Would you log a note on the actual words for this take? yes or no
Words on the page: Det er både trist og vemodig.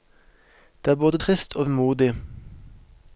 no